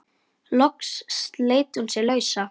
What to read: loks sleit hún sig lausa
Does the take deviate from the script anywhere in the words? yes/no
no